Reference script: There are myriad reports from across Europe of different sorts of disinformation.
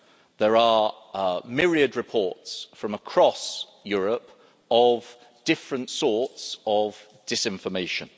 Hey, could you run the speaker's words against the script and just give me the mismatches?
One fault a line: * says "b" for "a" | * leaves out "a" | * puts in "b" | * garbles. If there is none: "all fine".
all fine